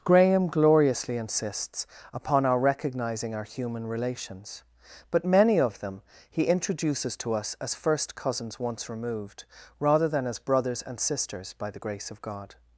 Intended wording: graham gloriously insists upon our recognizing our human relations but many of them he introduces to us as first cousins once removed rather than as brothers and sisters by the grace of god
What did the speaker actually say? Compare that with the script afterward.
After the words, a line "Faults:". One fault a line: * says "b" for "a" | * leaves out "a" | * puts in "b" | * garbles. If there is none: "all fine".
graham gloriously insists upon our recognizing our human relations but many of them he introduces to us as first cousins once removed rather than as brothers and sisters by the grace of god
Faults:
all fine